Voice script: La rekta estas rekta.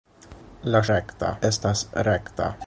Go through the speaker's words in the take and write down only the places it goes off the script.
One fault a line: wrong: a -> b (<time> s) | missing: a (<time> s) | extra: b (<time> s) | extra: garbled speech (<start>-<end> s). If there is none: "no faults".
no faults